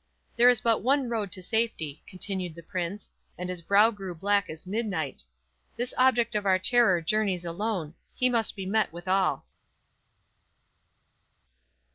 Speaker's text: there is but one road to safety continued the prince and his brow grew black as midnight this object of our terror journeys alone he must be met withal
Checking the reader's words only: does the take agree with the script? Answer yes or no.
yes